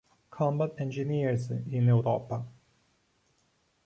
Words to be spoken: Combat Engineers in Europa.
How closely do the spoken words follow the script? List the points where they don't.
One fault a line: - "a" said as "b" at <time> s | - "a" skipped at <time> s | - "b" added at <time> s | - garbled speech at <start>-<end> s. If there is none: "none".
none